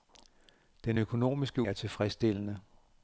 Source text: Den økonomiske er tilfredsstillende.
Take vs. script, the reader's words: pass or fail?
pass